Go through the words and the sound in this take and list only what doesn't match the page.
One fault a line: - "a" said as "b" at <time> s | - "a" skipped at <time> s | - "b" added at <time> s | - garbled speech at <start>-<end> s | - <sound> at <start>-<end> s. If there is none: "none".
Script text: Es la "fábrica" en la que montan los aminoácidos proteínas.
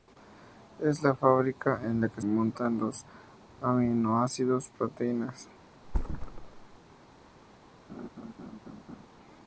- thud at 5.8-6.8 s
- laugh at 7.9-9.1 s